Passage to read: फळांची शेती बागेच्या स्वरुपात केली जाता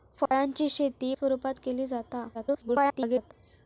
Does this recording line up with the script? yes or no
no